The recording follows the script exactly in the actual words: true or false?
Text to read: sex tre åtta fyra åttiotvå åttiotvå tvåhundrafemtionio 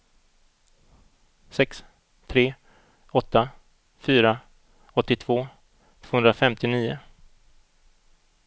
false